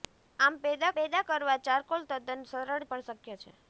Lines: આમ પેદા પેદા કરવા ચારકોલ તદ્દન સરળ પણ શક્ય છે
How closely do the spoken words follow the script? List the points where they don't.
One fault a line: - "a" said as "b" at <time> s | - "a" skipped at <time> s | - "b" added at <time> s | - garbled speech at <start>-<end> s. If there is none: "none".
none